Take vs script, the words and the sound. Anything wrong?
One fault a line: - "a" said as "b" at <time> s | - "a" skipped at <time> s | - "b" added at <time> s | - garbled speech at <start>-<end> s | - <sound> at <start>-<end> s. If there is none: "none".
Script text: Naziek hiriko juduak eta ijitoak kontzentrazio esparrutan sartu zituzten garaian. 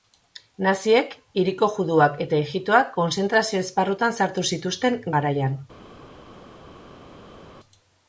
none